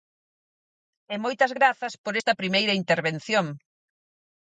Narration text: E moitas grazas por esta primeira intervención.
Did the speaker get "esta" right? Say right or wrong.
right